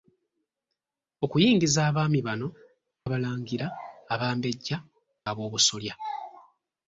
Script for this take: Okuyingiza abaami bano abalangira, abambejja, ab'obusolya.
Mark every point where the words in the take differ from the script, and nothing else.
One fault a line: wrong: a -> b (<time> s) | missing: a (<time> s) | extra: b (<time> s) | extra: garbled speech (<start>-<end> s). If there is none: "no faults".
no faults